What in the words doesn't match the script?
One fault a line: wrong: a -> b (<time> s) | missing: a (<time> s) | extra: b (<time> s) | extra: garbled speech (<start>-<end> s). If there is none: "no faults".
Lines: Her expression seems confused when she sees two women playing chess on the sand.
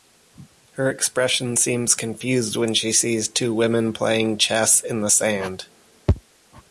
wrong: on -> in (4.8 s)